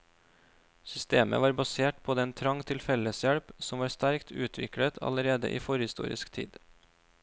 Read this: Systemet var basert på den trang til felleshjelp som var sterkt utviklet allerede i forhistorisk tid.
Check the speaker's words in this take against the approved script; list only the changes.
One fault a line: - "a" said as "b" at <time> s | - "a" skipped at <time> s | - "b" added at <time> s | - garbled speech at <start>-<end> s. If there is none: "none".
none